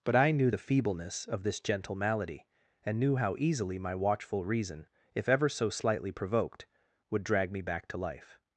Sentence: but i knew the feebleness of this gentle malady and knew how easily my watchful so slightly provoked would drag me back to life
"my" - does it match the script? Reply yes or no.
yes